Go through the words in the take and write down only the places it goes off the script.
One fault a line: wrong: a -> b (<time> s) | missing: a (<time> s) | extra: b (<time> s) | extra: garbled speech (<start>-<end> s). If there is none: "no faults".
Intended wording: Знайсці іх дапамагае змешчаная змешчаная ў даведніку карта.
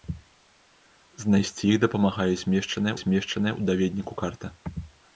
no faults